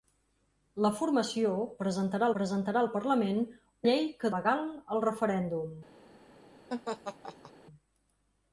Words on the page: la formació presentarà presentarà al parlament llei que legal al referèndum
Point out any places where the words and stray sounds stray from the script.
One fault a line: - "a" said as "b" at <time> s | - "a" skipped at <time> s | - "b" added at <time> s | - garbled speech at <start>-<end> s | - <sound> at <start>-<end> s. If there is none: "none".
- laugh at 6.7-7.5 s